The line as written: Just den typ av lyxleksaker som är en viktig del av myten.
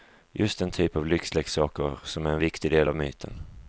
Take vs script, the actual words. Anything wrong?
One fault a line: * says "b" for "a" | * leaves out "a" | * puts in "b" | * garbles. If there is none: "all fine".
all fine